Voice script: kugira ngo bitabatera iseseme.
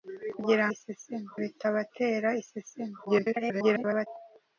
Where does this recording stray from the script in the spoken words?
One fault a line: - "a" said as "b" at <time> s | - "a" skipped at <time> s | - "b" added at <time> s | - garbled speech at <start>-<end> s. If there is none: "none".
- "ngo" said as "iseseme" at 0.7 s
- garbled speech at 3.1-4.1 s